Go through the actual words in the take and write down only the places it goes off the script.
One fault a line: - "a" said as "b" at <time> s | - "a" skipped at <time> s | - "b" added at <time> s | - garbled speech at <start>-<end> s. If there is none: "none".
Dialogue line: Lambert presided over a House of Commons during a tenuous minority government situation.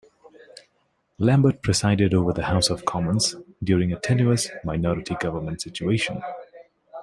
- "a" said as "the" at 2.3 s